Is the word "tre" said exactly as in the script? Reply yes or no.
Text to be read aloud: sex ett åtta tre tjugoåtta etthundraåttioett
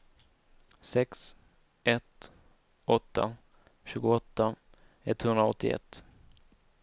no